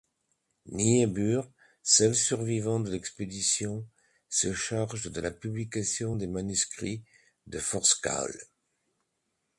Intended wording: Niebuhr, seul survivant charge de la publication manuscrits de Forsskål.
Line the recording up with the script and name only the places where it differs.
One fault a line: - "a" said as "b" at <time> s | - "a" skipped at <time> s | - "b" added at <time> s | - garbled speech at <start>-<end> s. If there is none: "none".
- "de l'expédition se" added at 2.8 s
- "des" added at 6.1 s